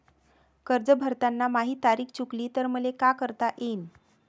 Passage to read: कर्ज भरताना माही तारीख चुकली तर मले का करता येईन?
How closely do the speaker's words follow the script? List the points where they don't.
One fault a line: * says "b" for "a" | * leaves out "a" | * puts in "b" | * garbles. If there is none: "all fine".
all fine